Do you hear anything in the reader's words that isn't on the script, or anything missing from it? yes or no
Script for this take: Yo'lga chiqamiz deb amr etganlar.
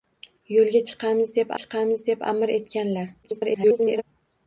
yes